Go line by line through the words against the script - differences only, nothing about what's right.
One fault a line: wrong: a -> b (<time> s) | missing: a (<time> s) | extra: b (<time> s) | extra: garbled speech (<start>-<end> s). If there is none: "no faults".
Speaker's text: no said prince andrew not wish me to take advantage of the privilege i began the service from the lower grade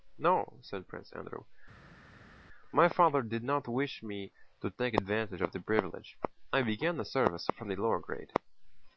extra: my father did (2.7 s)